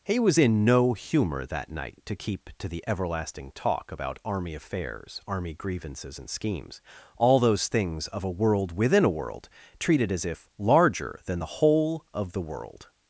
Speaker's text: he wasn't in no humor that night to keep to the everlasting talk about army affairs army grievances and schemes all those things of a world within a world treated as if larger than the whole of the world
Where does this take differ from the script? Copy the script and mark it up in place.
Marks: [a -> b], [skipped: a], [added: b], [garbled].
he [wasn't -> was] in no humor that night to keep to the everlasting talk about army affairs army grievances and schemes all those things of a world within a world treated as if larger than the whole of the world